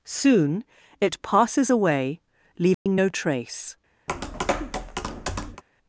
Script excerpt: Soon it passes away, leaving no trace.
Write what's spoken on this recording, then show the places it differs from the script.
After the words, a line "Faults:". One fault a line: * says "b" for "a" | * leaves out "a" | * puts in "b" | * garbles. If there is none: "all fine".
Soon it passes away, leaving no trace.
Faults:
all fine